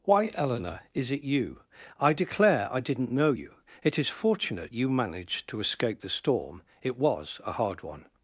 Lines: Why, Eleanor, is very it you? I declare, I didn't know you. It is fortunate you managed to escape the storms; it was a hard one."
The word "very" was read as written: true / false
false